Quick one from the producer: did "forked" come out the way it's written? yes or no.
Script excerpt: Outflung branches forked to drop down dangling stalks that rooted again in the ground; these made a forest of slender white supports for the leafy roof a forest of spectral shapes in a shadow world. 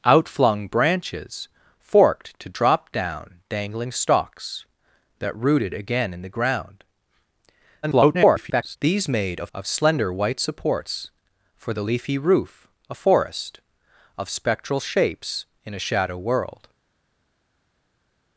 yes